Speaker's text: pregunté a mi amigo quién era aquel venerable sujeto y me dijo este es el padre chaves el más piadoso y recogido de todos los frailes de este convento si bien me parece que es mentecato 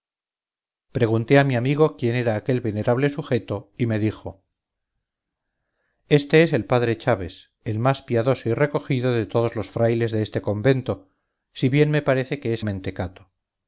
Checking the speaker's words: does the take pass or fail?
pass